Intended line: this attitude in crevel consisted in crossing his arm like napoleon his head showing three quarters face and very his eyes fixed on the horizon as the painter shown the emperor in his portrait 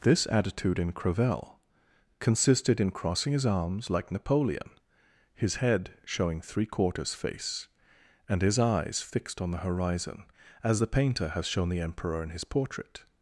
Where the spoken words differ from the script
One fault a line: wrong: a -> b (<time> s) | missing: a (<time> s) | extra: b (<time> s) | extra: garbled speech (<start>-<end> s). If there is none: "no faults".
wrong: arm -> arms (3.5 s)
missing: very (8.4 s)
extra: has (11.3 s)